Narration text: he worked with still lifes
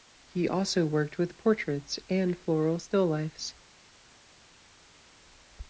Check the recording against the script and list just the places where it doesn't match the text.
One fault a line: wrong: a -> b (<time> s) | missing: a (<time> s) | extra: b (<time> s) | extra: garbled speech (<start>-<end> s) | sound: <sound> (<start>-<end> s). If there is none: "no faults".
extra: also (0.5 s)
extra: portraits and floral (1.4 s)